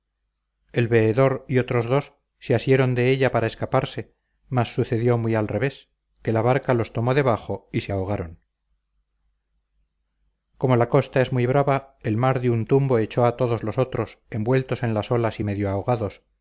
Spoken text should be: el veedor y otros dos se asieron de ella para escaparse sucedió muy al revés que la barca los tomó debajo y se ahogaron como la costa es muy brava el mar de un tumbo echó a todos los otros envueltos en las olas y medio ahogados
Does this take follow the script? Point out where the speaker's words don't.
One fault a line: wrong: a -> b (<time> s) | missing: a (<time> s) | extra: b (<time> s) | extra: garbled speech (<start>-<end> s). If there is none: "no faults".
extra: mas (4.5 s)